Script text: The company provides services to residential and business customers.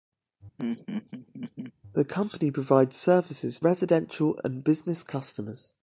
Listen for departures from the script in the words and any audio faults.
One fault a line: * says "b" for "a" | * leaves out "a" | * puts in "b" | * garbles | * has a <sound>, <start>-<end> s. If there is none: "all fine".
* has a laugh, 0.6-1.7 s
* leaves out "to"